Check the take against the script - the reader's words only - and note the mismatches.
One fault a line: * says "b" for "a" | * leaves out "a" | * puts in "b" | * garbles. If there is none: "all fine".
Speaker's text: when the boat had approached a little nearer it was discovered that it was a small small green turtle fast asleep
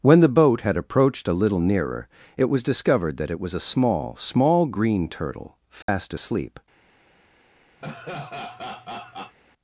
all fine